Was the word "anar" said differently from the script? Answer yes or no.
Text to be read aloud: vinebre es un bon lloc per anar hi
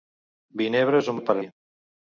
yes